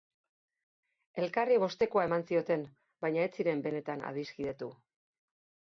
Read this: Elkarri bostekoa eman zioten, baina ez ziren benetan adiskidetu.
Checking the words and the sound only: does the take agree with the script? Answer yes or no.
yes